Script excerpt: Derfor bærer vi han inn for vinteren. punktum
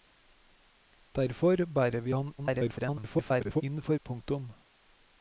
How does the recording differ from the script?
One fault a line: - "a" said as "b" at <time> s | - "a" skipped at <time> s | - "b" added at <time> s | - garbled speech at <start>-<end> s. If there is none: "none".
- garbled speech at 2.4-3.6 s
- "vinteren" skipped at 4.0 s